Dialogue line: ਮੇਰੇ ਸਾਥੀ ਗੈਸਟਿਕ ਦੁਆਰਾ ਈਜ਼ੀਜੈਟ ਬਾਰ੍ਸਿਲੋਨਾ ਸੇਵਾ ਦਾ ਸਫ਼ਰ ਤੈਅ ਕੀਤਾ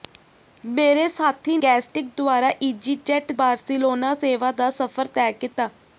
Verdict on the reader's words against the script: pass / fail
pass